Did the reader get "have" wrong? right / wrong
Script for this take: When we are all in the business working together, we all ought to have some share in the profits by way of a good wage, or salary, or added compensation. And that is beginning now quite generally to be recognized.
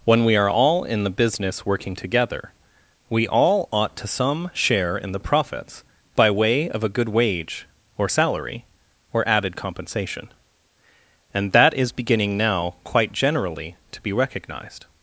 wrong